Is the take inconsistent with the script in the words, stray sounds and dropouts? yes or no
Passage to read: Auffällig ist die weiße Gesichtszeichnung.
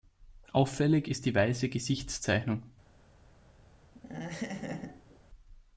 yes